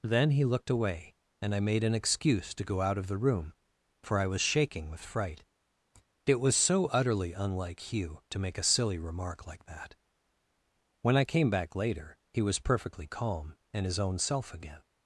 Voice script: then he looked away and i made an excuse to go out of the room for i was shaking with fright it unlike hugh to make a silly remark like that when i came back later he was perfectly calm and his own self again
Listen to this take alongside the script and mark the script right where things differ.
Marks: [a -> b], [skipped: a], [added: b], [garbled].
then he looked away and i made an excuse to go out of the room for i was shaking with fright it [added: was so utterly] unlike hugh to make a silly remark like that when i came back later he was perfectly calm and his own self again